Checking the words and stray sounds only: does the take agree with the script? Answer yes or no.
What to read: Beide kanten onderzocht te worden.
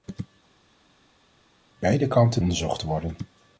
yes